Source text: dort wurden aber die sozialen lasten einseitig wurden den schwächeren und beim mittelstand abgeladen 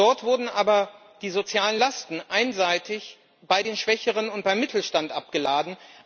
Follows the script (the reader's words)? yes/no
no